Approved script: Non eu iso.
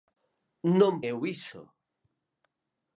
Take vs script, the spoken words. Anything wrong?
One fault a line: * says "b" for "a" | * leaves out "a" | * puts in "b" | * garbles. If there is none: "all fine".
all fine